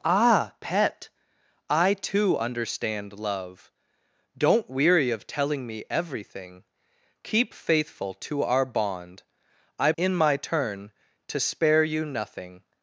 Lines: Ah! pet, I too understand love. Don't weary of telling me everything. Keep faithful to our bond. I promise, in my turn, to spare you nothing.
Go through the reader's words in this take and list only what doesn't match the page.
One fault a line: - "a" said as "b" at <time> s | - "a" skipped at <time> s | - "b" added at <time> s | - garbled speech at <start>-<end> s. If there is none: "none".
- "promise" skipped at 9.9 s